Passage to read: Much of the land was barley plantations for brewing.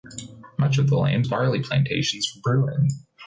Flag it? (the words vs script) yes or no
yes